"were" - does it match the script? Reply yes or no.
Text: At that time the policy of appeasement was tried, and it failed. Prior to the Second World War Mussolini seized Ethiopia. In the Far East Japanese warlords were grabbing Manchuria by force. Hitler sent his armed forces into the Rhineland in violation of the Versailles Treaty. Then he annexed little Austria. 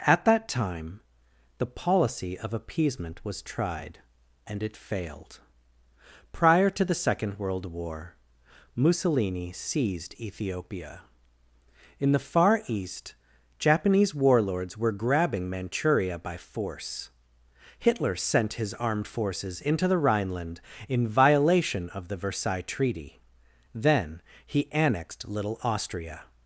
yes